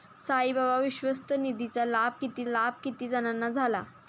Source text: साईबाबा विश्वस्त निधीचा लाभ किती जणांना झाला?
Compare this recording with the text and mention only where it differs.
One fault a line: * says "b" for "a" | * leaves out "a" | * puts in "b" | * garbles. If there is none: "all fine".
* puts in "लाभ किती"